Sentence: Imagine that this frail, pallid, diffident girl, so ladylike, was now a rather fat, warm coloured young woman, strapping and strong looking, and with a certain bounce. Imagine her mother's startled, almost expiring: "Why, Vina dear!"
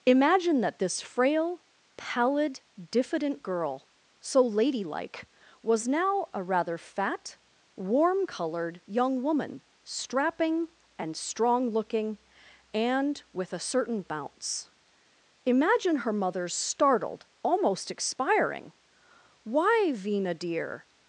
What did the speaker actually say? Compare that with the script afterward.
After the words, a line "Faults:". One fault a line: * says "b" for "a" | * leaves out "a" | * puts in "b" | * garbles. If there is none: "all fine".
Imagine that this frail, pallid, diffident girl, so ladylike, was now a rather fat, warm coloured young woman, strapping and strong looking, and with a certain bounce. Imagine her mother's startled, almost expiring: "Why, Vina dear!"
Faults:
all fine